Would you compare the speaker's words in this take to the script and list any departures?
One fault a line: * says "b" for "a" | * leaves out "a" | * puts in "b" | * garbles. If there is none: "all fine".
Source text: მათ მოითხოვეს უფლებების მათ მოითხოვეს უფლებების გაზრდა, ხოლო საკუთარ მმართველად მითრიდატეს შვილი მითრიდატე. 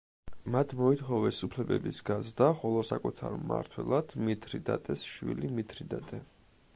* leaves out "მათ მოითხოვეს უფლებების"